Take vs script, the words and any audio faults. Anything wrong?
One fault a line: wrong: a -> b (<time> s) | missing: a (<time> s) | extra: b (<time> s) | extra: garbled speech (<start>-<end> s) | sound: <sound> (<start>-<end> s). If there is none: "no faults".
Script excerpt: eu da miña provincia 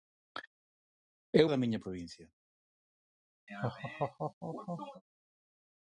sound: laugh (3.5-5.0 s)